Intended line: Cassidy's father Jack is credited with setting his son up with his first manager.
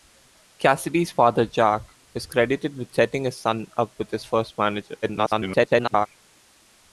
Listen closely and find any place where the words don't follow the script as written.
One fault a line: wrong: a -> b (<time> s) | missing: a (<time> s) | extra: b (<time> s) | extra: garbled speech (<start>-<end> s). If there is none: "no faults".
extra: garbled speech (5.0-6.1 s)